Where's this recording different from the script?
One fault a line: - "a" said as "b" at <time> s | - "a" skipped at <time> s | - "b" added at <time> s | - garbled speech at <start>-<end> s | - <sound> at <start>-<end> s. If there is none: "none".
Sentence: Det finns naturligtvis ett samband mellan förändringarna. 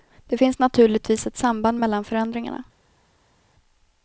none